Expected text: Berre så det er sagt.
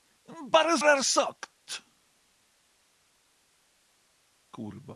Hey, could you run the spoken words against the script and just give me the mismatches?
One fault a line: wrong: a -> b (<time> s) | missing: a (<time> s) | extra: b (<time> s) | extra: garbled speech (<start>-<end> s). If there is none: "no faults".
missing: så (0.8 s)